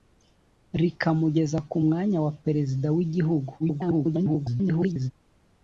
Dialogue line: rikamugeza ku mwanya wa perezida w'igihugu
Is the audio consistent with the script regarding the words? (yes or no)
no